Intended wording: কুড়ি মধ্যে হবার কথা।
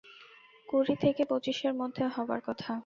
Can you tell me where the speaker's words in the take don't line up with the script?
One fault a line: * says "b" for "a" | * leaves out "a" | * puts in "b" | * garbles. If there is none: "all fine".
* puts in "থেকে পঁচিশের"